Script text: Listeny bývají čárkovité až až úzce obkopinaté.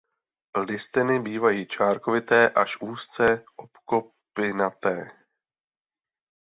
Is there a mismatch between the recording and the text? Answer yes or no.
yes